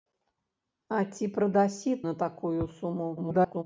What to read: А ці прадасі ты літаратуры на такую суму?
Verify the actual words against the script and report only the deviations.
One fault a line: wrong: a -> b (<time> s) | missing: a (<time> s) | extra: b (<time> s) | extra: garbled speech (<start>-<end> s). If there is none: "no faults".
missing: ты літаратуры (1.9 s)
extra: garbled speech (3.2-3.6 s)